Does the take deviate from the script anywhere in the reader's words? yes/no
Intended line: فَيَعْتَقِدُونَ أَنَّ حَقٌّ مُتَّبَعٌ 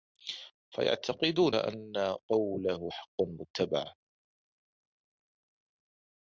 yes